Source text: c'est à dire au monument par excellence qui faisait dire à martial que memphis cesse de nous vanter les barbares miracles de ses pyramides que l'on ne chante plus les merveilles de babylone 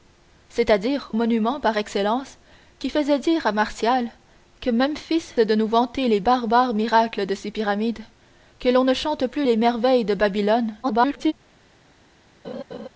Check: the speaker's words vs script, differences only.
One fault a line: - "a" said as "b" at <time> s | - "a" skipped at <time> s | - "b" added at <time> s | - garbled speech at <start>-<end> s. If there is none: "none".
- "au" skipped at 1.1 s
- "cesse" skipped at 5.3 s
- garbled speech at 10.8-11.3 s